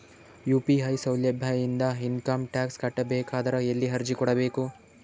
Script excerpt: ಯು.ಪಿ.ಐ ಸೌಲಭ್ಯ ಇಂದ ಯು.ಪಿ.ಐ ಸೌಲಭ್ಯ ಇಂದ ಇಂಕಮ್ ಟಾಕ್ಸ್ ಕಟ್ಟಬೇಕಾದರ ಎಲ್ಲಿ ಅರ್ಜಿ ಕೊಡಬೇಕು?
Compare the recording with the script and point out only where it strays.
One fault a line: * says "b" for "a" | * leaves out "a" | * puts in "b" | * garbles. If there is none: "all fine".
* leaves out "ಯು.ಪಿ.ಐ ಸೌಲಭ್ಯ ಇಂದ"